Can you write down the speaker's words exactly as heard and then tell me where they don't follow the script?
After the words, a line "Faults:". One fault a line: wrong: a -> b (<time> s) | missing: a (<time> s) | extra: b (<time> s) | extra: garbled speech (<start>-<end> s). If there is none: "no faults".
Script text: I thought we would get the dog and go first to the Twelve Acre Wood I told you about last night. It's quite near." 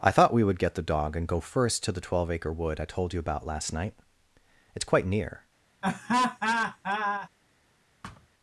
I thought we would get the dog and go first to the Twelve Acre Wood I told you about last night. It's quite near."
Faults:
no faults